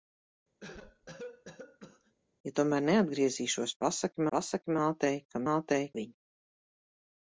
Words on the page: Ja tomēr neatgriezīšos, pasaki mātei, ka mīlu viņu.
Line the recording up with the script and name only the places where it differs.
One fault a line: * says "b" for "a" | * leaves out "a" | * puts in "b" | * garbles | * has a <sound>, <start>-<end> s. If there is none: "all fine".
* has a cough, 0.6-2.1 s
* puts in "pasaki"
* says "mātei" for "mīlu"